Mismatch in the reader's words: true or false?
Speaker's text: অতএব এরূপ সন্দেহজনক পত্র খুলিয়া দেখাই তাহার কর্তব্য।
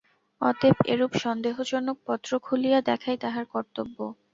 false